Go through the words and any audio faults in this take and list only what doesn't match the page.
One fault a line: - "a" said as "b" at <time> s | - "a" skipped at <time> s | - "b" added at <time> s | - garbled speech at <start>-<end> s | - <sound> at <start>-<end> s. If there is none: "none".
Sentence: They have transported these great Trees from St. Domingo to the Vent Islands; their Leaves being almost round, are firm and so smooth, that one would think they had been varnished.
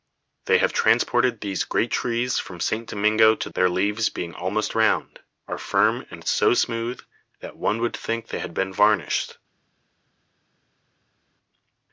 - "the Vent Islands" skipped at 3.5 s